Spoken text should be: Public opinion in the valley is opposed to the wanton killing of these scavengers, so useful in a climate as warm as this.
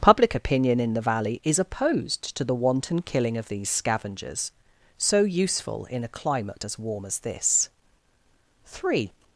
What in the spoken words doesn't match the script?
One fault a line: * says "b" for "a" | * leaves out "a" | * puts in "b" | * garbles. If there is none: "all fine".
* puts in "Three"